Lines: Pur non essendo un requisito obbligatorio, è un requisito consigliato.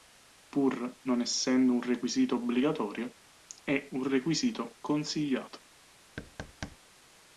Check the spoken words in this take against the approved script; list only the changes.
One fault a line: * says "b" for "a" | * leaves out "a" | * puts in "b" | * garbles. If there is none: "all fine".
all fine